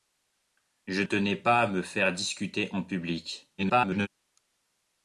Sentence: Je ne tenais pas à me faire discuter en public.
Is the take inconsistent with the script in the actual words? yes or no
yes